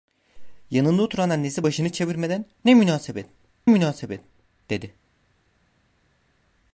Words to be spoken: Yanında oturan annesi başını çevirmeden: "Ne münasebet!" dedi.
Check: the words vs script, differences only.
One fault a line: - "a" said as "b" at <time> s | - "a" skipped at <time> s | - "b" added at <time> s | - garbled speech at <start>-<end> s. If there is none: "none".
- "münasebet" added at 3.7 s